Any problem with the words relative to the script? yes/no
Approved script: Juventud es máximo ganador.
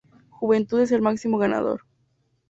yes